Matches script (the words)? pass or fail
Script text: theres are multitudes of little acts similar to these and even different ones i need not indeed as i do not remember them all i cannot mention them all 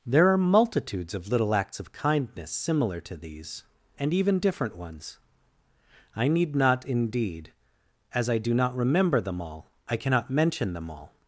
fail